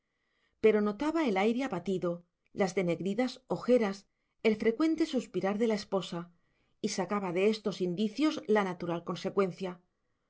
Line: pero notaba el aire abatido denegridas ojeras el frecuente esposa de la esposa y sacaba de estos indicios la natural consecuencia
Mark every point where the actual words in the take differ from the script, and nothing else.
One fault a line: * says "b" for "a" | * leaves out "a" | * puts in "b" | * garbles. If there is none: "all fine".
* puts in "las"
* says "suspirar" for "esposa"